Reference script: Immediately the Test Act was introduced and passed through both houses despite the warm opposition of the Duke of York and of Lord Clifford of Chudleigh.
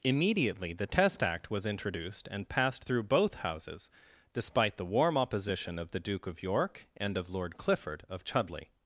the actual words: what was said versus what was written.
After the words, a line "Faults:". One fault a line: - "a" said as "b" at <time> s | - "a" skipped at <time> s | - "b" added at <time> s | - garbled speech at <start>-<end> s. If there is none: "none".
Immediately the Test Act was introduced and passed through both houses despite the warm opposition of the Duke of York and of Lord Clifford of Chudleigh.
Faults:
none